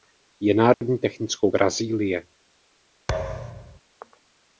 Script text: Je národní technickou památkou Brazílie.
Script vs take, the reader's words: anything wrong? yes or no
yes